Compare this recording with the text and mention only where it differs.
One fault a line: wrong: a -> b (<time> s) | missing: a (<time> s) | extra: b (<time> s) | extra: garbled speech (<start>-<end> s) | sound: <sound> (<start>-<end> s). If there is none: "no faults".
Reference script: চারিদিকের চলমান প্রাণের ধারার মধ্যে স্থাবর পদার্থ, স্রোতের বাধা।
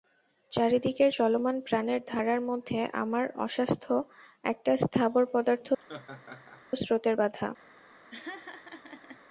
extra: আমার অস্বাস্থ্য একটা (3.0 s)
sound: laugh (5.8-6.6 s)
sound: laugh (8.1-9.2 s)